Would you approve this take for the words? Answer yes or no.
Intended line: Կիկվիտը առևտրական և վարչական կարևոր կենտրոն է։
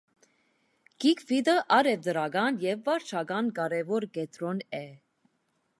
yes